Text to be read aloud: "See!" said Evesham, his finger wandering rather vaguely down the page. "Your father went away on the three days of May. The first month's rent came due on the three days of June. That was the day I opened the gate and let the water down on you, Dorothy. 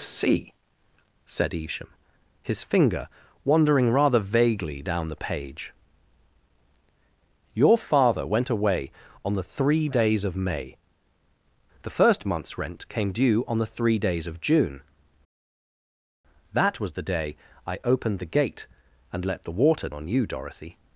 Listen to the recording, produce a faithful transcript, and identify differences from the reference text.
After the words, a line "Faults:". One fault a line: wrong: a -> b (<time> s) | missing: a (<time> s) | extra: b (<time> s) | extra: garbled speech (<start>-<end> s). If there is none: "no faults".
"See!" said Evesham, his finger wandering rather vaguely down the page. "Your father went away on the three days of May. The first month's rent came due on the three days of June. That was the day I opened the gate and let the water on you, Dorothy.
Faults:
missing: down (19.9 s)